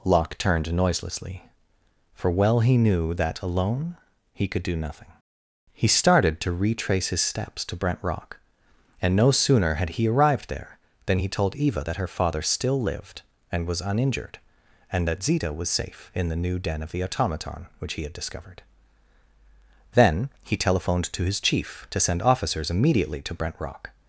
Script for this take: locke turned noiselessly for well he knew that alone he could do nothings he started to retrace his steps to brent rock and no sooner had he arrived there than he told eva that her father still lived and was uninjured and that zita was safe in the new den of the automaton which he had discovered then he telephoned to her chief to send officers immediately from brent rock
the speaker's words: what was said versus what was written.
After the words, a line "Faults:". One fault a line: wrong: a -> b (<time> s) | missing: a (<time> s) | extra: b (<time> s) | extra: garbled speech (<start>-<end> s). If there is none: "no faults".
locke turned noiselessly for well he knew that alone he could do nothing he started to retrace his steps to brent rock and no sooner had he arrived there than he told eva that her father still lived and was uninjured and that zita was safe in the new den of the automaton which he had discovered then he telephoned to his chief to send officers immediately to brent rock
Faults:
wrong: nothings -> nothing (4.8 s)
wrong: her -> his (21.2 s)
wrong: from -> to (23.2 s)